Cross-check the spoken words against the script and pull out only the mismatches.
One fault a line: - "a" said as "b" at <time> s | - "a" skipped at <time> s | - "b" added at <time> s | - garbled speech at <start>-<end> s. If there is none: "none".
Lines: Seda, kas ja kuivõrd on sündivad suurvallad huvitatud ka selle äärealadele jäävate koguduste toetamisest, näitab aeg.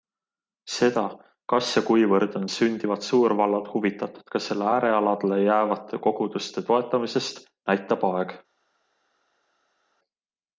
none